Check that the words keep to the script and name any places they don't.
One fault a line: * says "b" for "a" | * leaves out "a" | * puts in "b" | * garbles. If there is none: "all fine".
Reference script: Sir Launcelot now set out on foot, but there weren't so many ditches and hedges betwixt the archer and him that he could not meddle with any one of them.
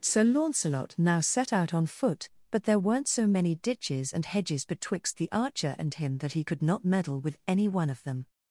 all fine